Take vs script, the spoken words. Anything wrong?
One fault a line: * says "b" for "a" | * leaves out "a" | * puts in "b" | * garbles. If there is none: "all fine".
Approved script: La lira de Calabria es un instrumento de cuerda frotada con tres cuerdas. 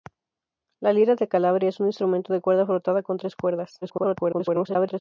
* garbles